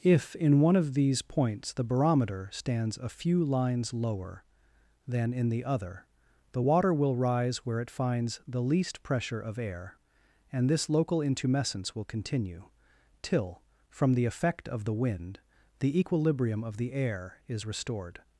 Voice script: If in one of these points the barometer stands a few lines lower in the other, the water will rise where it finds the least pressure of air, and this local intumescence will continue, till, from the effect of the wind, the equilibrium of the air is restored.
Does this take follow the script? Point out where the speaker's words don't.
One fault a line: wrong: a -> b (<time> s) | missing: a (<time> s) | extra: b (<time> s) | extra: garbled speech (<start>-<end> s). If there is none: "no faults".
extra: than (5.1 s)